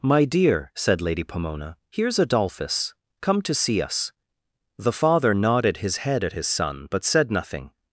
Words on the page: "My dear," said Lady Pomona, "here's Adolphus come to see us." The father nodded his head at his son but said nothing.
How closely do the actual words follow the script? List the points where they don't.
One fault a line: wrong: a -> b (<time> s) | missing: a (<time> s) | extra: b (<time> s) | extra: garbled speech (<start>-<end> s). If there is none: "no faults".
no faults